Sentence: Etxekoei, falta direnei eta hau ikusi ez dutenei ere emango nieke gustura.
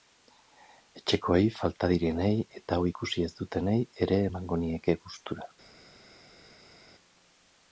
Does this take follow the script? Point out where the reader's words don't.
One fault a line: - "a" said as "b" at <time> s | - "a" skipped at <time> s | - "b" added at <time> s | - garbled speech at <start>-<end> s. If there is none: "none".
none